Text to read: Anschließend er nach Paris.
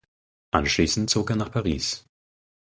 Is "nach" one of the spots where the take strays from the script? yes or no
no